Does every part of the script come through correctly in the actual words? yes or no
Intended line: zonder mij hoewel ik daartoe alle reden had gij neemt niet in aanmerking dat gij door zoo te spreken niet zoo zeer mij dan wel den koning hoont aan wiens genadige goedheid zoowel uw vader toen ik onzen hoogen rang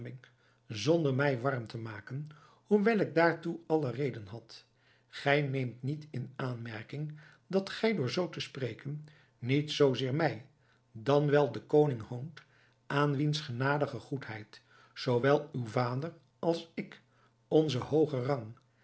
no